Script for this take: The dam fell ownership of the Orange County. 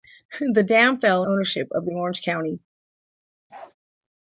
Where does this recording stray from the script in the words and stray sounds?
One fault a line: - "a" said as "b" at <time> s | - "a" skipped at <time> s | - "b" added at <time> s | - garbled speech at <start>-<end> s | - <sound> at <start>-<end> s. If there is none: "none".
- bark at 3.5-3.7 s